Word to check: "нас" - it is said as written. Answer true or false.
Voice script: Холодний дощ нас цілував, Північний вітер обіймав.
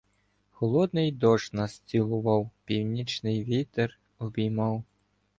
true